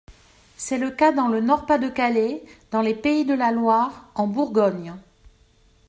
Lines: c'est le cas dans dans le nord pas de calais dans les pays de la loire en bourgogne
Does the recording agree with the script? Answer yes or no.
no